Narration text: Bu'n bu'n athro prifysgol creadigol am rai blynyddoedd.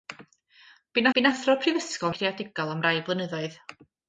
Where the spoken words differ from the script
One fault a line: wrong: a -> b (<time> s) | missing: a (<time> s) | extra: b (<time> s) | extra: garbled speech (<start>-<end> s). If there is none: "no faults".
no faults